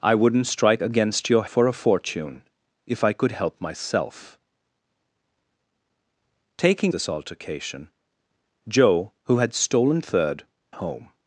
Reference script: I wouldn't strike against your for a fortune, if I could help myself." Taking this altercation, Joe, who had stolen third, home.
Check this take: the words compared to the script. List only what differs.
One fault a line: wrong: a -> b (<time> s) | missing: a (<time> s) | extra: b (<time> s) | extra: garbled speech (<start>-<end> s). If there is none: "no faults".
no faults